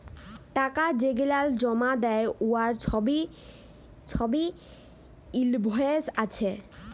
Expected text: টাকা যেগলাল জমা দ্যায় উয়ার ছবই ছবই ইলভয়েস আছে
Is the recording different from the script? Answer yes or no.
no